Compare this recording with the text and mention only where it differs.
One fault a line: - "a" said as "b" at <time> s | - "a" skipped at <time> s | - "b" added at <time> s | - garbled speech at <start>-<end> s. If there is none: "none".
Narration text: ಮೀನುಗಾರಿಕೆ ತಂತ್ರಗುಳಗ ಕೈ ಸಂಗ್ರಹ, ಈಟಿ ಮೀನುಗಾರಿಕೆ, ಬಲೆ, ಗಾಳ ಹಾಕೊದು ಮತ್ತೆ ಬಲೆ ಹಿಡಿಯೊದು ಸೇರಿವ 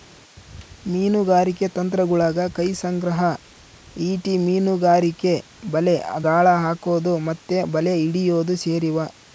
none